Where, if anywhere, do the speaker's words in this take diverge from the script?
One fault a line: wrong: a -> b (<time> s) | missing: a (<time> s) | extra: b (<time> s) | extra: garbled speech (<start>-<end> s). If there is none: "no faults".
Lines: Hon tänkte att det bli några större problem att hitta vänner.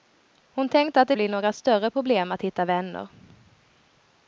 no faults